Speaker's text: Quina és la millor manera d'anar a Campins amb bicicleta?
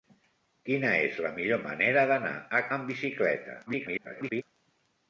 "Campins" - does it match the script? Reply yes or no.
no